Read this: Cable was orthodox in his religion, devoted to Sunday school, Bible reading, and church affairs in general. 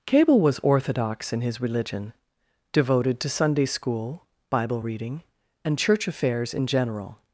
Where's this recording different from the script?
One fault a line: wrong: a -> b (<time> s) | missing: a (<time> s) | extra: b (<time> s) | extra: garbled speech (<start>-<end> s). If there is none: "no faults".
no faults